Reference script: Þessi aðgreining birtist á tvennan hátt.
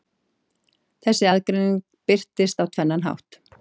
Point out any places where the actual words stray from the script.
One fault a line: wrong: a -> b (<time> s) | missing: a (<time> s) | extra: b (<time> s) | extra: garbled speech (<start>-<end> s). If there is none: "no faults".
no faults